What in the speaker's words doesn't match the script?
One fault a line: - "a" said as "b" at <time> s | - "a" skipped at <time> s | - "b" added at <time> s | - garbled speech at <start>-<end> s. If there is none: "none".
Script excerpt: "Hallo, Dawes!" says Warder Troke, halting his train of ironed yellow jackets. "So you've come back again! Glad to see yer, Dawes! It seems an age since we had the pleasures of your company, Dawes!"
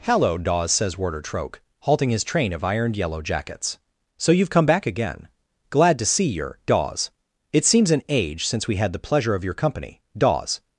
- "pleasures" said as "pleasure" at 9.0 s